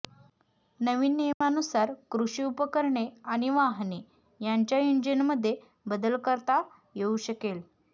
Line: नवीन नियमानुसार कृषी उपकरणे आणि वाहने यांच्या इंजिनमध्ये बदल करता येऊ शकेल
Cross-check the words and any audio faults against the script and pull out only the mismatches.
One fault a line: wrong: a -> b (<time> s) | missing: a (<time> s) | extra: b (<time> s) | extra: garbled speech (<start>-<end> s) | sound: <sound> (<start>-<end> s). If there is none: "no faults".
sound: dropout (1.3-1.4 s)